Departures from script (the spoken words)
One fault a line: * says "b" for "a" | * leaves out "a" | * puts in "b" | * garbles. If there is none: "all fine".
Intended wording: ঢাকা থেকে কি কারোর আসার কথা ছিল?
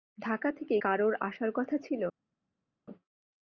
* leaves out "কি"